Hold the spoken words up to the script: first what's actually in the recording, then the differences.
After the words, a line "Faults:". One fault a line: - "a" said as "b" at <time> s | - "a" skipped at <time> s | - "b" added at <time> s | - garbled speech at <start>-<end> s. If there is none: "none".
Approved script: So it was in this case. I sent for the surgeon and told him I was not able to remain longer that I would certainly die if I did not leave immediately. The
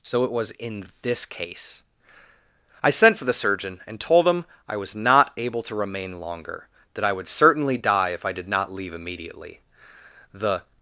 So it was in this case. I sent for the surgeon and told him I was not able to remain longer that I would certainly die if I did not leave immediately. The
Faults:
none